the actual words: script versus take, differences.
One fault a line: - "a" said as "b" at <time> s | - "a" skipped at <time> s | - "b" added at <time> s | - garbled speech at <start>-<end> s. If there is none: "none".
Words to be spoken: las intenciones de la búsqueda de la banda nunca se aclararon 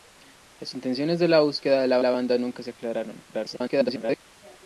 - "la" added at 2.0 s
- garbled speech at 3.3-4.2 s